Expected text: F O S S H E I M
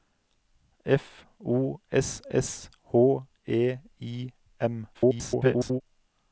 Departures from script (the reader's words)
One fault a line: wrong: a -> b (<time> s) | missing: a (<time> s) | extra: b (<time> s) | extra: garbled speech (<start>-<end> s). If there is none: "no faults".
extra: garbled speech (4.9-5.8 s)